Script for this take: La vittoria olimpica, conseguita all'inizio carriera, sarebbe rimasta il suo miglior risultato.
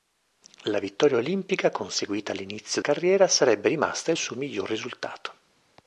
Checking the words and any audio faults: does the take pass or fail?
pass